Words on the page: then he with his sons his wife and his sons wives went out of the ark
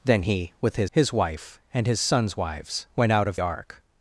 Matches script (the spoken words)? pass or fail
fail